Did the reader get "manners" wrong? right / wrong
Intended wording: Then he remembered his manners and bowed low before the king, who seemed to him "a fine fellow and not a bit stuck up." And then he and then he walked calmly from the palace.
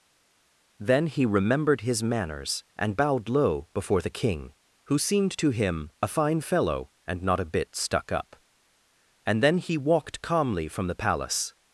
right